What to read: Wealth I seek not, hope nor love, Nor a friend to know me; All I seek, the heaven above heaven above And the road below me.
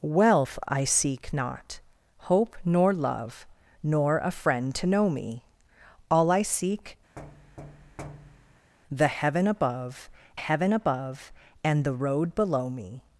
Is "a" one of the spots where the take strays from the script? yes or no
no